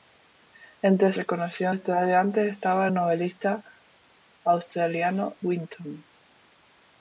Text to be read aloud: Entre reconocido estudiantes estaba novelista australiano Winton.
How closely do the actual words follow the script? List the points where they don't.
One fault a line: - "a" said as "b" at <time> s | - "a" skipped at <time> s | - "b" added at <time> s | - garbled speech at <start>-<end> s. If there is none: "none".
none